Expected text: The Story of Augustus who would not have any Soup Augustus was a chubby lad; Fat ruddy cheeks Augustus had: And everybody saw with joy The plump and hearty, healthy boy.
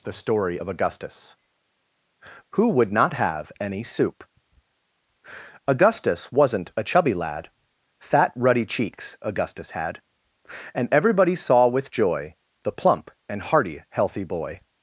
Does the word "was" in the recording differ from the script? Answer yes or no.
yes